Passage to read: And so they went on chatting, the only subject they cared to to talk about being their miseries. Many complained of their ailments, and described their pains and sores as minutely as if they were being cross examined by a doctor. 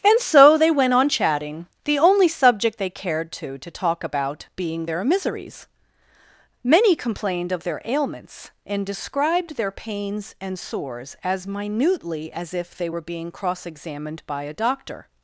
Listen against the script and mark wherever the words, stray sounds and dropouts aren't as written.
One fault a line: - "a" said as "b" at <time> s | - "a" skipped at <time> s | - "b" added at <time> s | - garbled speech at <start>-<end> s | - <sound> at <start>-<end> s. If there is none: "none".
none